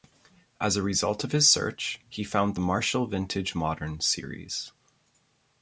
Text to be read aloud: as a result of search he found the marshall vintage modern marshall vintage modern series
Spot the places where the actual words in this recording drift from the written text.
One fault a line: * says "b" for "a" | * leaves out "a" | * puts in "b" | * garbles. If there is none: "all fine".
* puts in "his"
* leaves out "marshall vintage modern"